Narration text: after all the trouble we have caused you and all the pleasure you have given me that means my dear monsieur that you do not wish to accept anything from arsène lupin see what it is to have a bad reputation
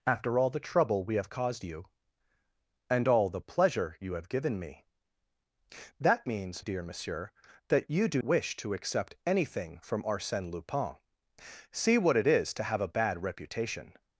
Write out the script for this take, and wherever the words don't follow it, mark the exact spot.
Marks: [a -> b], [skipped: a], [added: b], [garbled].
after all the trouble we have caused you and all the pleasure you have given me that means [skipped: my] dear monsieur that you do [skipped: not] wish to accept anything from arsène lupin see what it is to have a bad reputation